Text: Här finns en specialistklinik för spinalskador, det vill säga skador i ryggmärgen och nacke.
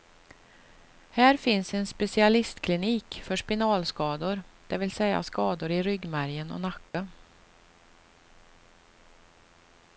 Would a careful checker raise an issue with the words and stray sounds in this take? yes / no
yes